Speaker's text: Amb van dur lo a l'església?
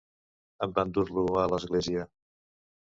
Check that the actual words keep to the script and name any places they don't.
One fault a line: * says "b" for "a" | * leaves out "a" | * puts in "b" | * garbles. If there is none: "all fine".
all fine